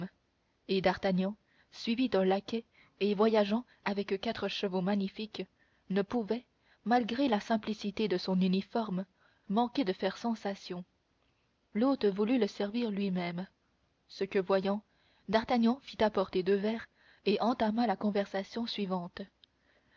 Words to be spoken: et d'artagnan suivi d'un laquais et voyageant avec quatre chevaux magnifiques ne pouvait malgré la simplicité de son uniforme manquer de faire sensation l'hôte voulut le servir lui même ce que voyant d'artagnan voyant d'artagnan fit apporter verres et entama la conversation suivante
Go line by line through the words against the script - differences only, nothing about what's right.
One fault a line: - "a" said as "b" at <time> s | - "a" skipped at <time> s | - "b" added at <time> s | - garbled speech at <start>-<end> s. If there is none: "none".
- "voyant d'artagnan" skipped at 15.8 s
- "deux" added at 16.4 s